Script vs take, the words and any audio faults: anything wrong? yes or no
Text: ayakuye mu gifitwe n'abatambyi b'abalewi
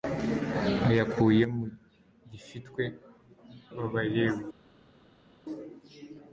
yes